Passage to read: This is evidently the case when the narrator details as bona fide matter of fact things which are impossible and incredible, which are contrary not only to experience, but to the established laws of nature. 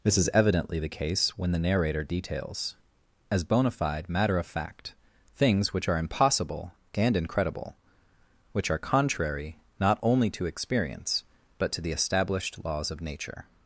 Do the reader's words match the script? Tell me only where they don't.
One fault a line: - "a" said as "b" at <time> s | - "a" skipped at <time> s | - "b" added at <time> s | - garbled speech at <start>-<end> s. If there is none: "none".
none